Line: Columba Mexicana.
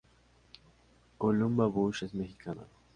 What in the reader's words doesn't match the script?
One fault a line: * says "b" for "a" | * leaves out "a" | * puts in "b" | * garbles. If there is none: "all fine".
* puts in "Bush es"